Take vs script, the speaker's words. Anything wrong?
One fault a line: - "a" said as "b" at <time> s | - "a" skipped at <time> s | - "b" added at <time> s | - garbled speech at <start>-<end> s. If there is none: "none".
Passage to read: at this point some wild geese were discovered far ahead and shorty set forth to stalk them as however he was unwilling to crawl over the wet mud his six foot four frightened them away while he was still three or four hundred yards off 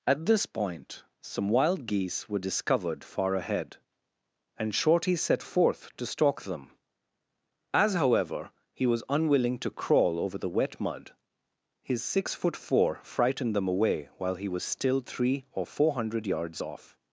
none